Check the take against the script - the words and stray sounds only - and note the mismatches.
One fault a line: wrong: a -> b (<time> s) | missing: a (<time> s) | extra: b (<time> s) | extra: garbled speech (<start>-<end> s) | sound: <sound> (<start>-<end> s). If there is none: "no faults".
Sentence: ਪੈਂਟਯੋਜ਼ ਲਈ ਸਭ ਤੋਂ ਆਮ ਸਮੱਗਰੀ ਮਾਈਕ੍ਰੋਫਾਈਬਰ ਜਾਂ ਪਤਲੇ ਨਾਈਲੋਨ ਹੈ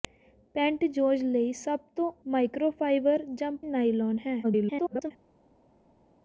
missing: ਆਮ ਸਮੱਗਰੀ (2.1 s)
missing: ਪਤਲੇ (3.5 s)
extra: garbled speech (4.4-5.1 s)